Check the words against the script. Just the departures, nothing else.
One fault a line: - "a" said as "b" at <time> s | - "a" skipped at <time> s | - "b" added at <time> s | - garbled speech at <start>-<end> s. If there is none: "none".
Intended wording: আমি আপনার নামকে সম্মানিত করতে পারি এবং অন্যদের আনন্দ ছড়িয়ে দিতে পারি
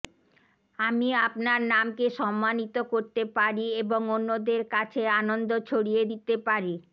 - "কাছে" added at 4.7 s